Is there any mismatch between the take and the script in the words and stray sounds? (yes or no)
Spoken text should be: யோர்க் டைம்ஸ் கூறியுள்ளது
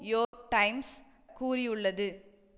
yes